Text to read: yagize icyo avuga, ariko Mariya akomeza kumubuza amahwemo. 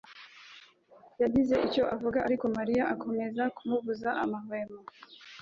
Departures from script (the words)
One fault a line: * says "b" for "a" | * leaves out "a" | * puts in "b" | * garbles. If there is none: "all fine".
all fine